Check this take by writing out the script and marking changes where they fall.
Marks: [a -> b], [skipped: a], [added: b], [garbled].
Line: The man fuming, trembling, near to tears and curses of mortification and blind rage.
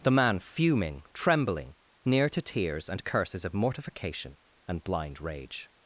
The man fuming, trembling, near to tears and curses of mortification and blind rage.